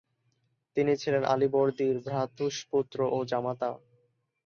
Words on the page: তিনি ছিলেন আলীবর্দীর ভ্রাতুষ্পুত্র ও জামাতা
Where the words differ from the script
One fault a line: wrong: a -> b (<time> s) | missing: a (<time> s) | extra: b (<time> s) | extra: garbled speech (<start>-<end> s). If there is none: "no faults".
no faults